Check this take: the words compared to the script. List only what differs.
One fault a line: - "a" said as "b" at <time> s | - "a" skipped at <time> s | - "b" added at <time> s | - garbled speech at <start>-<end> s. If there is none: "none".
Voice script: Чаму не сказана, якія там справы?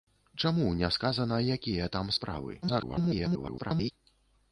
- garbled speech at 2.6-3.9 s